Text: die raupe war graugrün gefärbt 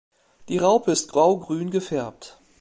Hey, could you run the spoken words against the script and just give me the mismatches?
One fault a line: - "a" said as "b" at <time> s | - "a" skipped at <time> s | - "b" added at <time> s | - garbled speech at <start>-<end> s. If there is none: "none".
- "war" said as "ist" at 0.9 s